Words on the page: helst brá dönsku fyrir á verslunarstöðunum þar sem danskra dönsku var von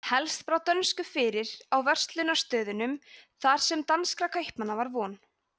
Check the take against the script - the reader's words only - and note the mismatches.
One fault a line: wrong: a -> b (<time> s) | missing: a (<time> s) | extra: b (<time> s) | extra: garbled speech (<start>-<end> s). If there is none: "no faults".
wrong: dönsku -> kaupmanna (4.4 s)